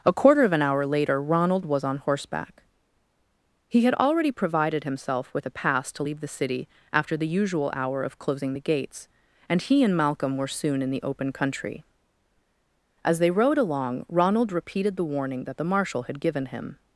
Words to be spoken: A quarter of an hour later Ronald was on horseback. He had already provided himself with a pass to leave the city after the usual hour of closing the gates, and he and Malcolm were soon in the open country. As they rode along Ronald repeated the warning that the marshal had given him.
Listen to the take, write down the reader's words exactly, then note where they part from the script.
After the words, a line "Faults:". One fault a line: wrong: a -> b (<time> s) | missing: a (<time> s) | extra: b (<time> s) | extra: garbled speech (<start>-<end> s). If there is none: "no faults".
A quarter of an hour later Ronald was on horseback. He had already provided himself with a pass to leave the city after the usual hour of closing the gates, and he and Malcolm were soon in the open country. As they rode along Ronald repeated the warning that the marshal had given him.
Faults:
no faults